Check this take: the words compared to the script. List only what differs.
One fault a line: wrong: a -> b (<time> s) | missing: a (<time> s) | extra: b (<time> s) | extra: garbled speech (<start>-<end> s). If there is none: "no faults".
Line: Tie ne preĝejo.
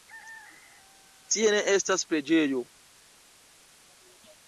extra: estas (1.8 s)